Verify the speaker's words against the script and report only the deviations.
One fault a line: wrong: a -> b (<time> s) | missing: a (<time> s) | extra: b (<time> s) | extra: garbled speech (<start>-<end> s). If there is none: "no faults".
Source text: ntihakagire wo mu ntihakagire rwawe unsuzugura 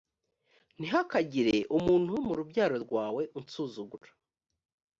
extra: umuntu (1.8 s)
wrong: ntihakagire -> rubyaro (2.4 s)